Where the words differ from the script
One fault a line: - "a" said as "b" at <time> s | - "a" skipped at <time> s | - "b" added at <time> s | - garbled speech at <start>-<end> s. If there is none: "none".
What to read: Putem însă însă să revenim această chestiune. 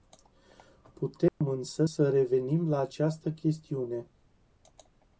- "însă" skipped at 1.9 s
- "la" added at 2.7 s